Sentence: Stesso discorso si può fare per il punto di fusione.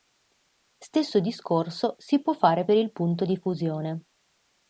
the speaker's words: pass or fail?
pass